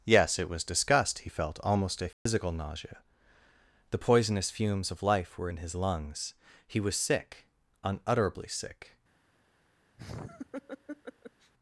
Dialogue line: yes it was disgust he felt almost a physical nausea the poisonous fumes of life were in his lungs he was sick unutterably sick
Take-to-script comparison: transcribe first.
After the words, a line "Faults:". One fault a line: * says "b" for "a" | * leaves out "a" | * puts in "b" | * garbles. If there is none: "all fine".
yes it was disgust he felt almost a physical nausea the poisonous fumes of life were in his lungs he was sick unutterably sick
Faults:
all fine